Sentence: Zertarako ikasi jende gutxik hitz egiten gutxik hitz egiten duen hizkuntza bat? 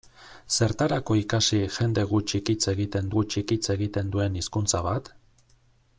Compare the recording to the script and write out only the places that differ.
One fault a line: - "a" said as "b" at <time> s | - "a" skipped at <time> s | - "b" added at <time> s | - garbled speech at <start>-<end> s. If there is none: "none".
none